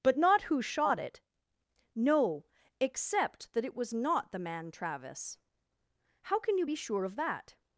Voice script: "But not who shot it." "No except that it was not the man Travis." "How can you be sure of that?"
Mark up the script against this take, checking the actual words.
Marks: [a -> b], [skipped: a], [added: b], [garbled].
"But not who shot it." "No except that it was not the man Travis." "How can you be sure of that?"